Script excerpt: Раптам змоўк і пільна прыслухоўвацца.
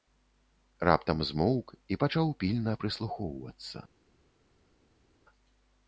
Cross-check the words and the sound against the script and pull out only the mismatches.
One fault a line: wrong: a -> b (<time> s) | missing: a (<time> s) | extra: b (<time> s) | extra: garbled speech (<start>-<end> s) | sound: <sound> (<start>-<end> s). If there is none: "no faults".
extra: пачаў (2.1 s)